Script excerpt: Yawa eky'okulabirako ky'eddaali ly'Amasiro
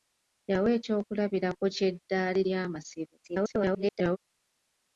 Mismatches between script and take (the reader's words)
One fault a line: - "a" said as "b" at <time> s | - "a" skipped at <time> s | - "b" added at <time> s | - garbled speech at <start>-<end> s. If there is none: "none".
- garbled speech at 3.2-4.2 s